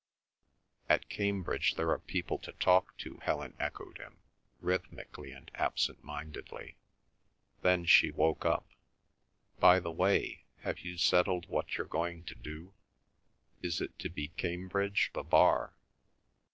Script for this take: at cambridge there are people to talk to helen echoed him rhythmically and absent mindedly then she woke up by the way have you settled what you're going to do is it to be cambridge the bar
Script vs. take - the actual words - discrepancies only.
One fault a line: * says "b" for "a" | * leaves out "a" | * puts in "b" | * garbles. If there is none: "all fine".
all fine